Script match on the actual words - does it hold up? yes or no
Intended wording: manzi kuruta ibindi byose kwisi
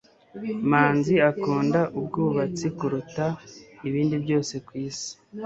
no